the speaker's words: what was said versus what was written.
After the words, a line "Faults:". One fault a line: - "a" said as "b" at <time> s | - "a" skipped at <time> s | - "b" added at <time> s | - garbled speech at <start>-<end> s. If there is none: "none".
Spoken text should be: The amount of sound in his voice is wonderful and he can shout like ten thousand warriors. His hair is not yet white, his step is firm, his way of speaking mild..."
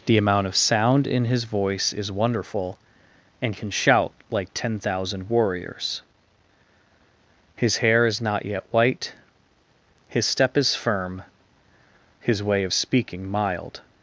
The amount of sound in his voice is wonderful and can shout like ten thousand warriors. His hair is not yet white, his step is firm, his way of speaking mild..."
Faults:
- "he" skipped at 3.5 s